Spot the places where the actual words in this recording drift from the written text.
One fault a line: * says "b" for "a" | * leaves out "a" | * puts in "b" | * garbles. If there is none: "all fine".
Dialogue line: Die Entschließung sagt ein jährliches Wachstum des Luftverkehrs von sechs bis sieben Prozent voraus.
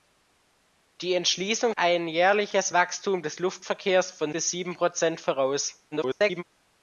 * leaves out "sagt"
* leaves out "sechs"
* garbles